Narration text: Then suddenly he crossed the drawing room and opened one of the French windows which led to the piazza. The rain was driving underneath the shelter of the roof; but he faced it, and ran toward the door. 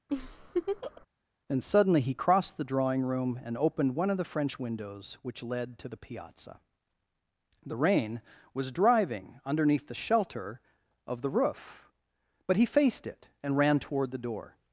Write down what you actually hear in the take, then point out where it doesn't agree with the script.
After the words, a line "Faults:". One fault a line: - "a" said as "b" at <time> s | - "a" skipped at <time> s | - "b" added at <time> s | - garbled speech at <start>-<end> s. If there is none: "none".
And suddenly he crossed the drawing room and opened one of the French windows which led to the piazza. The rain was driving underneath the shelter of the roof; but he faced it, and ran toward the door.
Faults:
- "Then" said as "And" at 1.5 s